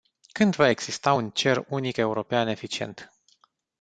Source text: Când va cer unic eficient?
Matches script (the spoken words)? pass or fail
fail